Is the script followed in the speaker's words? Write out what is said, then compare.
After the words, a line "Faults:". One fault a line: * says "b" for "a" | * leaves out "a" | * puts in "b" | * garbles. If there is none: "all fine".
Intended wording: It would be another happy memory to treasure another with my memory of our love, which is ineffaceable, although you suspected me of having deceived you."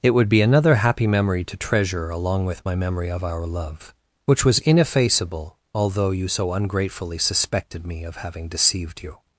It would be another happy memory to treasure along with my memory of our love, which was ineffaceable, although you so ungratefully suspected me of having deceived you."
Faults:
* says "along" for "another"
* says "was" for "is"
* puts in "so ungratefully"